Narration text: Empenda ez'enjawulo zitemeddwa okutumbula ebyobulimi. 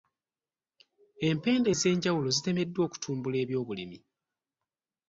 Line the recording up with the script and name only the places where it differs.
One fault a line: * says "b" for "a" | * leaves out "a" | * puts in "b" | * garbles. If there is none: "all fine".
all fine